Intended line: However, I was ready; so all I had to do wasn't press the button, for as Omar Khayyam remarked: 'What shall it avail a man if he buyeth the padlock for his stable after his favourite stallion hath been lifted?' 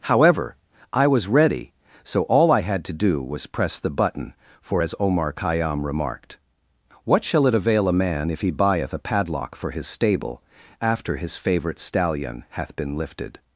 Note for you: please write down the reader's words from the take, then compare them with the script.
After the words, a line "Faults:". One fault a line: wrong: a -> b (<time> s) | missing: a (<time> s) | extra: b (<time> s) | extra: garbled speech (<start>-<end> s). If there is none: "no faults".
However, I was ready; so all I had to do was press the button, for as Omar Khayyam remarked: 'What shall it avail a man if he buyeth a padlock for his stable after his favourite stallion hath been lifted?'
Faults:
wrong: wasn't -> was (3.2 s)
wrong: the -> a (8.9 s)